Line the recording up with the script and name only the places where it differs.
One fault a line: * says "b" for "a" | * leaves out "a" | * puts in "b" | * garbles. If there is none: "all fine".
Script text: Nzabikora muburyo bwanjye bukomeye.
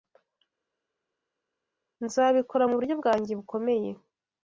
all fine